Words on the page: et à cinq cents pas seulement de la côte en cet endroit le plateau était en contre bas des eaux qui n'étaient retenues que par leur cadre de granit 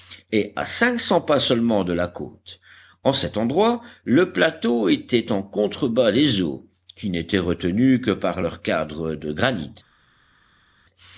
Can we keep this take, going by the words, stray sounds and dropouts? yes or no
yes